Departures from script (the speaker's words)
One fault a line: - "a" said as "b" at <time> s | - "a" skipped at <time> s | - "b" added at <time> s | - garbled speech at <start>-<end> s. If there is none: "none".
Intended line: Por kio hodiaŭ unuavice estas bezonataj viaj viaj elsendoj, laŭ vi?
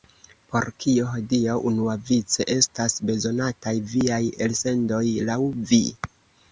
- "viaj" skipped at 4.2 s